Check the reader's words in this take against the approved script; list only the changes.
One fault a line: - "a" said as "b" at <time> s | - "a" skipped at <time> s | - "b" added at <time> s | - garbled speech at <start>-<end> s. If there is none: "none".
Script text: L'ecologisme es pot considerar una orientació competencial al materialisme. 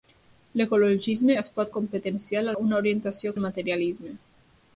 - "considerar" said as "competencial" at 1.8 s
- "competencial" skipped at 3.3 s